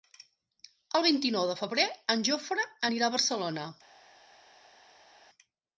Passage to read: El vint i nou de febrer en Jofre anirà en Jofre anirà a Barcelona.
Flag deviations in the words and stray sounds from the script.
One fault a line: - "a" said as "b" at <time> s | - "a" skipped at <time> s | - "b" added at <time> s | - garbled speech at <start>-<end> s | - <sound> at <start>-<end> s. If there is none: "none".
- "en Jofre anirà" skipped at 3.1 s